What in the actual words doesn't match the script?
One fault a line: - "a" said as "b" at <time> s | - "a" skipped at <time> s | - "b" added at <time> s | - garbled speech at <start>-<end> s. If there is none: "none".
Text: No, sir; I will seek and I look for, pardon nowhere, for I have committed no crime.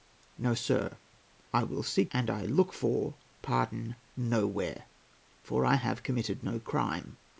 none